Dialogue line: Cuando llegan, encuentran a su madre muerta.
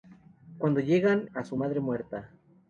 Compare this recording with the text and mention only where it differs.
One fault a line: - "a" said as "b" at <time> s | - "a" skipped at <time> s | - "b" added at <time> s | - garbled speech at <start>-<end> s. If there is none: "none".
- "encuentran" skipped at 1.3 s